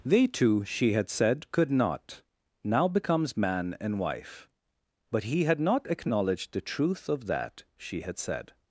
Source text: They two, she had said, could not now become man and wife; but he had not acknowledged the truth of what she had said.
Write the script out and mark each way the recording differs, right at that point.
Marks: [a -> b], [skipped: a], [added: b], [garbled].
They two, she had said, could not now [become -> becomes] man and wife; but he had not acknowledged the truth of [what -> that] she had said.